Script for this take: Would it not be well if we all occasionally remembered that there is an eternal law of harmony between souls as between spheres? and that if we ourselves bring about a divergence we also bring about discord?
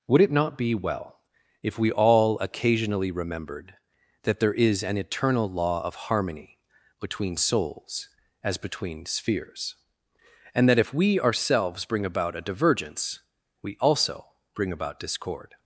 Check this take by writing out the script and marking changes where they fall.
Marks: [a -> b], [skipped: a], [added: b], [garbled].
Would it not be well if we all occasionally remembered that there is an eternal law of harmony between souls as between spheres? and that if we ourselves bring about a divergence we also bring about discord?